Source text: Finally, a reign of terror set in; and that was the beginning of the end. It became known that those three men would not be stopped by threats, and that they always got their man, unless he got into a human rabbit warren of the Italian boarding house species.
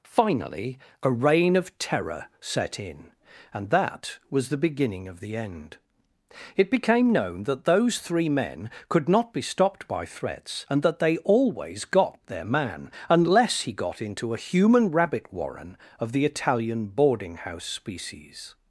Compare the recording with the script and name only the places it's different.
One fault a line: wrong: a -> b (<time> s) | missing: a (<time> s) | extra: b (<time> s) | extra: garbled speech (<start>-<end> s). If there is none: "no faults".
wrong: would -> could (8.9 s)